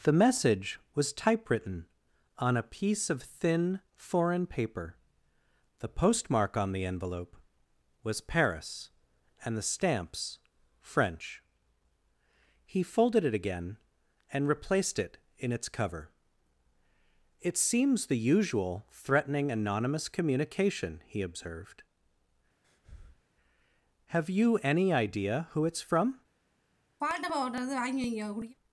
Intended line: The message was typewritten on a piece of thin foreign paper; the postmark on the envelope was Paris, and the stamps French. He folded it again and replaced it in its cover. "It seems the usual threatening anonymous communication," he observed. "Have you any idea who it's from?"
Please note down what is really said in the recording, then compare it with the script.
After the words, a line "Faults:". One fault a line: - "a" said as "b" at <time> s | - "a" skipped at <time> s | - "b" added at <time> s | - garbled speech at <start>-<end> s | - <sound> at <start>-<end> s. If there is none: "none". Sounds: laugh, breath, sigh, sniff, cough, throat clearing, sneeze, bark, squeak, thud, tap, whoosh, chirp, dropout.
The message was typewritten on a piece of thin foreign paper; the postmark on the envelope was Paris, and the stamps French. He folded it again and replaced it in its cover. "It seems the usual threatening anonymous communication," he observed. "Have you any idea who it's from?"
Faults:
- breath at 22.6-23.2 s
- throat clearing at 27.0-28.6 s